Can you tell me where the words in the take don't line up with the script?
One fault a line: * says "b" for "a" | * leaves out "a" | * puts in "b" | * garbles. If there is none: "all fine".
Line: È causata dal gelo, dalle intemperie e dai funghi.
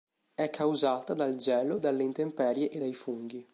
all fine